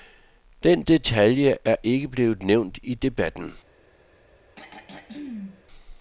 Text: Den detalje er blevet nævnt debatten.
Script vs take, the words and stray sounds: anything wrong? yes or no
yes